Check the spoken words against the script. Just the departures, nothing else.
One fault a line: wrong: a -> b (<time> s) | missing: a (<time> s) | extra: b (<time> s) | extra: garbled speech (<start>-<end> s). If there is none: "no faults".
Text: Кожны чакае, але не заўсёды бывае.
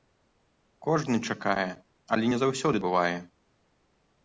no faults